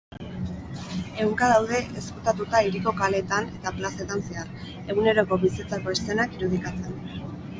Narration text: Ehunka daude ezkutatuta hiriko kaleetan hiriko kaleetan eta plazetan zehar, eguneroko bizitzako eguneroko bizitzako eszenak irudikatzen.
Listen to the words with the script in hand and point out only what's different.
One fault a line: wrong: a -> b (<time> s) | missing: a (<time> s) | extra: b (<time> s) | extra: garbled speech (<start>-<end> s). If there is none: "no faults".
missing: hiriko kaleetan (3.5 s)
missing: eguneroko bizitzako (6.0 s)